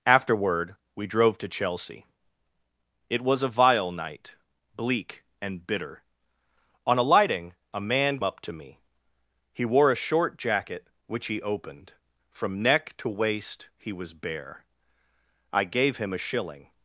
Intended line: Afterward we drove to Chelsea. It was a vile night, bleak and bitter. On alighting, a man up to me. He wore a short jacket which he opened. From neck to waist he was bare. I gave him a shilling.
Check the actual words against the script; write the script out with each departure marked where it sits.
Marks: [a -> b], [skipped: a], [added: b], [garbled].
Afterward we drove to Chelsea. It was a vile night, bleak and bitter. On alighting, a man up to me. He wore a short jacket which he opened. From neck to waist he was bare. I gave him a shilling.